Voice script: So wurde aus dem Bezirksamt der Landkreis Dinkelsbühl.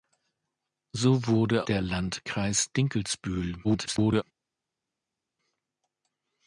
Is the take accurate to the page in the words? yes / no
no